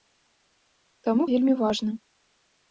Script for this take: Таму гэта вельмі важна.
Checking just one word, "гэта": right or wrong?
wrong